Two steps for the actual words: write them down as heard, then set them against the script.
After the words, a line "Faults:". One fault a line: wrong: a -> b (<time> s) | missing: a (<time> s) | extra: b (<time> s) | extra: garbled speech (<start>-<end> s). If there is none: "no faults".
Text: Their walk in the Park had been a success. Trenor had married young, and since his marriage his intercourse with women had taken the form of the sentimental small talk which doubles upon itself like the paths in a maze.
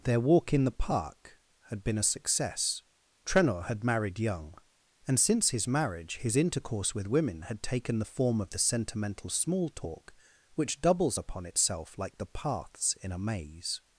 Their walk in the Park had been a success. Trenor had married young, and since his marriage his intercourse with women had taken the form of the sentimental small talk which doubles upon itself like the paths in a maze.
Faults:
no faults